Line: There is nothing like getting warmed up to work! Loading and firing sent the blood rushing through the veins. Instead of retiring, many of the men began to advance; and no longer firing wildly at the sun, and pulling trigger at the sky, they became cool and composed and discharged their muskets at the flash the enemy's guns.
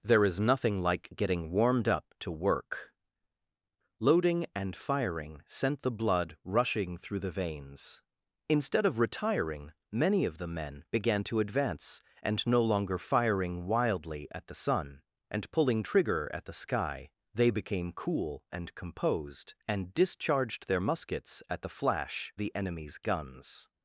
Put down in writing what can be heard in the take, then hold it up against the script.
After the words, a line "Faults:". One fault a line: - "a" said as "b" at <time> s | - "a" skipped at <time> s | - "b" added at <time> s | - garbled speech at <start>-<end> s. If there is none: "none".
There is nothing like getting warmed up to work! Loading and firing sent the blood rushing through the veins. Instead of retiring, many of the men began to advance; and no longer firing wildly at the sun, and pulling trigger at the sky, they became cool and composed and discharged their muskets at the flash the enemy's guns.
Faults:
none